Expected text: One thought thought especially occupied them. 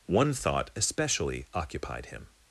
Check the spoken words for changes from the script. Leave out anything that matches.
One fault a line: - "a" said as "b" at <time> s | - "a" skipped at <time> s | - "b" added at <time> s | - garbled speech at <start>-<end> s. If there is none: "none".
- "thought" skipped at 0.7 s
- "them" said as "him" at 2.1 s